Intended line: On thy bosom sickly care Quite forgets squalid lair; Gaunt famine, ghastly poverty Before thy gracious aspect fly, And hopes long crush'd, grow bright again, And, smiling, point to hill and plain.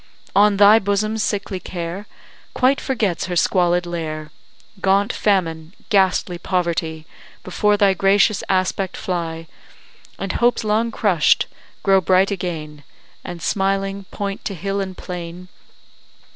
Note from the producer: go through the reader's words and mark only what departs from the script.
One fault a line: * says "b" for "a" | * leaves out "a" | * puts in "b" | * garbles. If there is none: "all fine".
* puts in "her"